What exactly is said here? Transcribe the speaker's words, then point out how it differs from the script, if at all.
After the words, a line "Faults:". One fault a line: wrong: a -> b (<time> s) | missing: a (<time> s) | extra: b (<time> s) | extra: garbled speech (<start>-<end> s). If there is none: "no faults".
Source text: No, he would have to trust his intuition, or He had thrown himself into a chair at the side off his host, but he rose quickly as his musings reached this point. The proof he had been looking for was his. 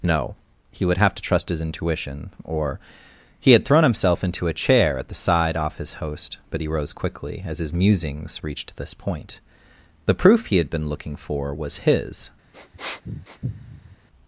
No, he would have to trust his intuition, or He had thrown himself into a chair at the side off his host, but he rose quickly as his musings reached this point. The proof he had been looking for was his.
Faults:
no faults